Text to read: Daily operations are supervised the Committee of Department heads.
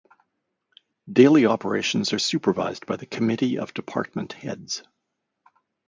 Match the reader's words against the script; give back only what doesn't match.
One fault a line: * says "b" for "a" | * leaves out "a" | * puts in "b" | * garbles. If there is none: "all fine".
* puts in "by"